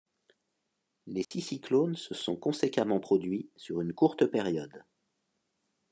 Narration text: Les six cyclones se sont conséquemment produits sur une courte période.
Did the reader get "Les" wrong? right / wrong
right